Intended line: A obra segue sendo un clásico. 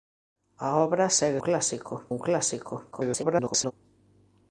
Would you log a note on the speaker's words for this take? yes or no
yes